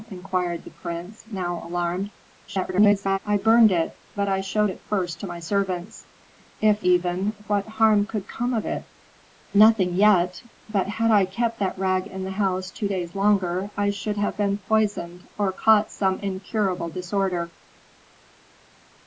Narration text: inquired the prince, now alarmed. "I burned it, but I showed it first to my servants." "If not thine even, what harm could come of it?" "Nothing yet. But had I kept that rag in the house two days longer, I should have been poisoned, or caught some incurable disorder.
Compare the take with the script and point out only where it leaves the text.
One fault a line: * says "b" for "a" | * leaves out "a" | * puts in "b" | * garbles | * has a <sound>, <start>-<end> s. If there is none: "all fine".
* garbles
* leaves out "not thine"